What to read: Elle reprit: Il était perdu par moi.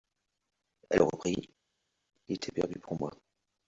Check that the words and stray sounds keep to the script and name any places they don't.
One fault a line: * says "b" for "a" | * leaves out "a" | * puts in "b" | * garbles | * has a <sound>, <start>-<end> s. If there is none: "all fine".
* says "pour" for "par"